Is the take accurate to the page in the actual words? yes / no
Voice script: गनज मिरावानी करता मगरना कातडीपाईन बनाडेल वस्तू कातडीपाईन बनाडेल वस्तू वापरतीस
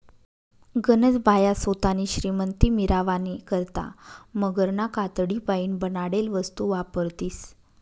no